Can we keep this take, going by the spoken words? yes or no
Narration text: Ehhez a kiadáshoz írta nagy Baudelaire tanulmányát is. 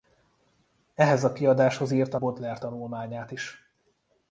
no